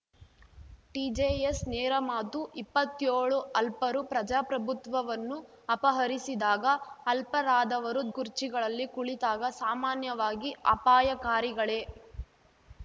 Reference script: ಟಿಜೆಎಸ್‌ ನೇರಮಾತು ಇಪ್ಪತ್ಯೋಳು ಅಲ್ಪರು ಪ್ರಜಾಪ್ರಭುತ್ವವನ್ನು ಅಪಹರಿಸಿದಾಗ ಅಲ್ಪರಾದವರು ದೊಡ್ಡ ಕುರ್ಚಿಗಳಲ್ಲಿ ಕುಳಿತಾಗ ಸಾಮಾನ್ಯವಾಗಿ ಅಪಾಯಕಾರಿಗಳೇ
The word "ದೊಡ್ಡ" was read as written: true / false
false